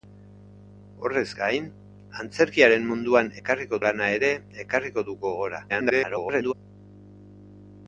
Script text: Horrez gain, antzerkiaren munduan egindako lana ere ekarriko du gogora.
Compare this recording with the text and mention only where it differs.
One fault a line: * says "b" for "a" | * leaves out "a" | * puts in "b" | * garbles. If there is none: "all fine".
* says "ekarriko" for "egindako"
* garbles